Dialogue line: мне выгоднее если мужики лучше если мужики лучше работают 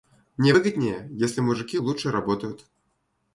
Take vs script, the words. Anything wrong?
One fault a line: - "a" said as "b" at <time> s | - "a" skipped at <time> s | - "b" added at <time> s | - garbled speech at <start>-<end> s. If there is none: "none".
- "если мужики лучше" skipped at 2.1 s